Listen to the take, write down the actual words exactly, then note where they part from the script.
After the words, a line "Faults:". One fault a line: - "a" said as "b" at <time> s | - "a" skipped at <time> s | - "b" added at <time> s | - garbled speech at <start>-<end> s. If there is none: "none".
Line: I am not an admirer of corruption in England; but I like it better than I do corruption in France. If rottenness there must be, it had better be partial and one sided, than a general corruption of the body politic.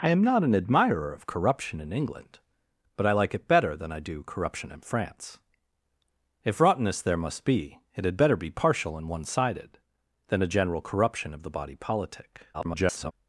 I am not an admirer of corruption in England; but I like it better than I do corruption in France. If rottenness there must be, it had better be partial and one sided, than a general corruption of the body politic. [garbled]
Faults:
- garbled speech at 12.5-13.1 s